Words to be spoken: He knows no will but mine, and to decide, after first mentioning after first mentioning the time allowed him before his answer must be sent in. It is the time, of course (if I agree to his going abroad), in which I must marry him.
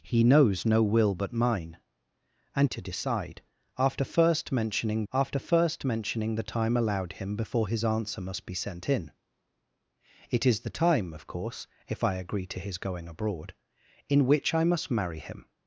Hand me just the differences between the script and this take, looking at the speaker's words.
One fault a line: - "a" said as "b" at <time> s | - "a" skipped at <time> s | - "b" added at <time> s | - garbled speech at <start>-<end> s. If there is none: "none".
none